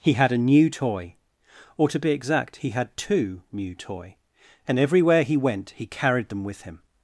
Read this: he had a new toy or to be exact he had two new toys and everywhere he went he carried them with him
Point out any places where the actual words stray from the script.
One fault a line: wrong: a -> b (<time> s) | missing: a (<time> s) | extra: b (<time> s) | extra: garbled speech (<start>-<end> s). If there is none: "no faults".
wrong: toys -> toy (3.7 s)